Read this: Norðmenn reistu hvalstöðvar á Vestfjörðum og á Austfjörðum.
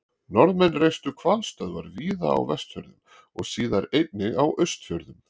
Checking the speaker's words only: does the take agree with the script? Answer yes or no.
no